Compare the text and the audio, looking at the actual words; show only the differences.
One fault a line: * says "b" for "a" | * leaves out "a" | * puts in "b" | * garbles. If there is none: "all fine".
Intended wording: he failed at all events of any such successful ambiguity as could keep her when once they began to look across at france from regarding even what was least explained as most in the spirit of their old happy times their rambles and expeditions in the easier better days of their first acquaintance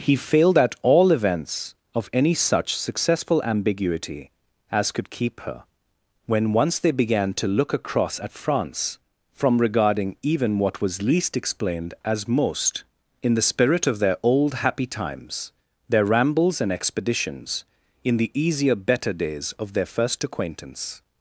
all fine